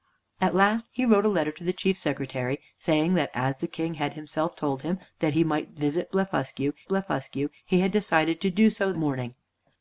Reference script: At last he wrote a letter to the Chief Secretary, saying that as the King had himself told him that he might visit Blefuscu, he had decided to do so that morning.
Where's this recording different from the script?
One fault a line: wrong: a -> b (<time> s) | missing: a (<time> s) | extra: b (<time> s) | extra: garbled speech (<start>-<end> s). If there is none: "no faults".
extra: Blefuscu (6.9 s)
missing: that (8.9 s)